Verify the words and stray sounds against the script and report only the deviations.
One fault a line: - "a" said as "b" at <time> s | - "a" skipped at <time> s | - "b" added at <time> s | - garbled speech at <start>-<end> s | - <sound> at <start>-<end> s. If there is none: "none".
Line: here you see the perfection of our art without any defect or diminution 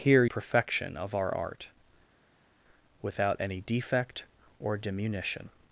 - "you see the" skipped at 0.2 s